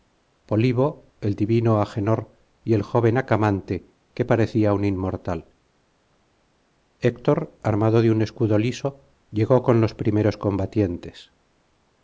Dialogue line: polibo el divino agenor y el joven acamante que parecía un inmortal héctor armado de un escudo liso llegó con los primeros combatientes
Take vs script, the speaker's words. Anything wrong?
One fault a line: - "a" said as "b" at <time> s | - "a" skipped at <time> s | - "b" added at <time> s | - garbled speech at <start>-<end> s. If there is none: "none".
none